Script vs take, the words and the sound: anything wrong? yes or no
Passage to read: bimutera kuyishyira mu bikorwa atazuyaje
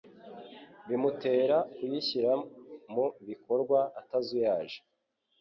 no